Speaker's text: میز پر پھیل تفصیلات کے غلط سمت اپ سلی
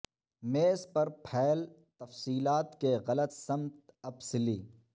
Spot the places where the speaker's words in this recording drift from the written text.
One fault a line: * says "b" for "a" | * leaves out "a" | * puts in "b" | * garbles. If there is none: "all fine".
all fine